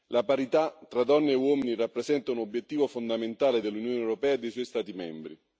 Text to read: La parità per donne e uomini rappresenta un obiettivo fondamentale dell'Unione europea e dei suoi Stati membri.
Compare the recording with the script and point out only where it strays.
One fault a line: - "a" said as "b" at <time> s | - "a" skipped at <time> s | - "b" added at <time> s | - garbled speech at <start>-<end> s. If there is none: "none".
- "per" said as "tra" at 0.9 s